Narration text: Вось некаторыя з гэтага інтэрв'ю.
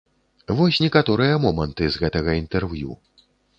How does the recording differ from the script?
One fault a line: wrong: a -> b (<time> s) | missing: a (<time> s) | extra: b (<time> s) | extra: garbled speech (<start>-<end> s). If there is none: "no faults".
extra: моманты (1.5 s)